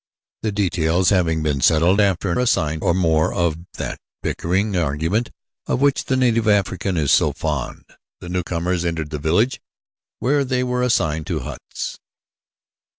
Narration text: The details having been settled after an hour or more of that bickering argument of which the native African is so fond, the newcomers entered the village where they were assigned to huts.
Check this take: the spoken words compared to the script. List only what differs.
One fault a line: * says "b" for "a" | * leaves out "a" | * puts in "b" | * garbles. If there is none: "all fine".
* says "assigned" for "hour"